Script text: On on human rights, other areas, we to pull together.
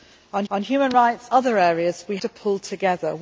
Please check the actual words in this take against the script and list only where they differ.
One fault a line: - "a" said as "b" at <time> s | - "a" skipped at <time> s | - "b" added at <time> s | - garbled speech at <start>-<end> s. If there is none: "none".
none